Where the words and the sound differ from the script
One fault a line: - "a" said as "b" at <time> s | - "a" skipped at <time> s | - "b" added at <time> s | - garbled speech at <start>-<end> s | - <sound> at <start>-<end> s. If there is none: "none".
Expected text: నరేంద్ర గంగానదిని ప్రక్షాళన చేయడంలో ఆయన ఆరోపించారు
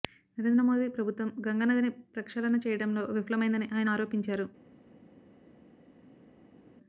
- "మోదీ ప్రభుత్వం" added at 0.6 s
- "విఫలమైందని" added at 3.1 s